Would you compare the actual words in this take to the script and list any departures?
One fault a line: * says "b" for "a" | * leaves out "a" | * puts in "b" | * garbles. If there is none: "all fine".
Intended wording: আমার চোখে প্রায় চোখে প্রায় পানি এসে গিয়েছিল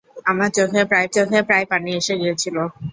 all fine